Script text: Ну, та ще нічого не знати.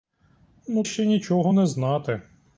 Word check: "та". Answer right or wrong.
wrong